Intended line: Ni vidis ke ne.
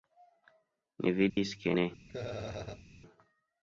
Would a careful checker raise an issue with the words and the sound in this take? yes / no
yes